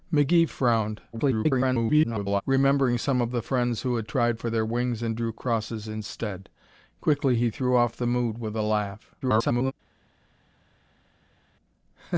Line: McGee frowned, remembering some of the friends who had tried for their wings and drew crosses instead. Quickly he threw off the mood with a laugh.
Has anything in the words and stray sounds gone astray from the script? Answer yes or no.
yes